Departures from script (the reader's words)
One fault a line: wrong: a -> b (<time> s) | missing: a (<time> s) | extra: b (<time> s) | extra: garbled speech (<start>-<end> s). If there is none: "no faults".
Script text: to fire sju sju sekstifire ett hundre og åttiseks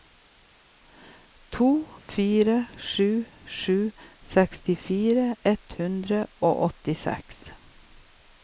no faults